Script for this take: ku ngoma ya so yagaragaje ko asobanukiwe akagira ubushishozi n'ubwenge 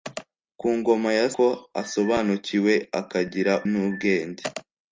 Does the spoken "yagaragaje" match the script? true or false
false